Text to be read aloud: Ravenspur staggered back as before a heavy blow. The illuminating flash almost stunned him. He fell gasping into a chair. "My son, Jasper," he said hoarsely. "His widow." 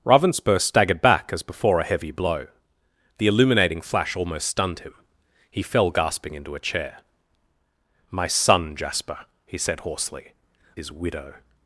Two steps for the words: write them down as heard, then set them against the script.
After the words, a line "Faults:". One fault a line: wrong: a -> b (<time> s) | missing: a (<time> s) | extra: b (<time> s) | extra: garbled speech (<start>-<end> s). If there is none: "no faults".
Ravenspur staggered back as before a heavy blow. The illuminating flash almost stunned him. He fell gasping into a chair. "My son, Jasper," he said hoarsely. "His widow."
Faults:
no faults